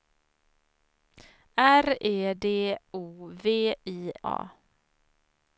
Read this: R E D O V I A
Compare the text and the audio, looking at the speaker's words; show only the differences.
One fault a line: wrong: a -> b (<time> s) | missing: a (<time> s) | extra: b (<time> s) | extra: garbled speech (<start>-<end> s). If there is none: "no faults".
no faults